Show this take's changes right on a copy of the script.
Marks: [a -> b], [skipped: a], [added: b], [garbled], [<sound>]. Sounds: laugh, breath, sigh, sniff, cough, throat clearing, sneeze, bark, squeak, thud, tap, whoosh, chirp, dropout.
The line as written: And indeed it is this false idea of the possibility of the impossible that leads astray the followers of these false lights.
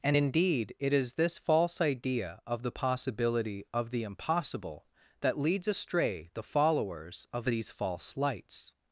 And indeed it is this false idea of the possibility of the impossible that leads astray the followers of these false lights.